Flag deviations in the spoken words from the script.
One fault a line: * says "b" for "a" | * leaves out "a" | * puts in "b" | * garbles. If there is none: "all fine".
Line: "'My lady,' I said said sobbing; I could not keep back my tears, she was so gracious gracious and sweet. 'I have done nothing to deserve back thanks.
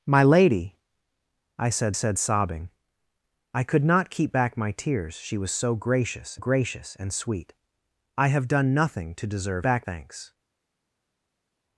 all fine